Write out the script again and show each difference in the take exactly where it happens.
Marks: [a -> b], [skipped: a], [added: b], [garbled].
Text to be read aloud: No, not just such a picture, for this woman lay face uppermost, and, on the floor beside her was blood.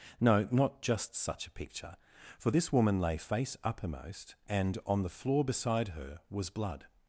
No, not just such a picture, for this woman lay face uppermost, and, on the floor beside her was blood.